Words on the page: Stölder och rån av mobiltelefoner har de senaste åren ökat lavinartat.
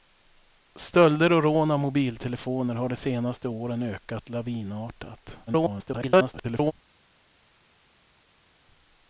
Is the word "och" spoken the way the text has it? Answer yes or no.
yes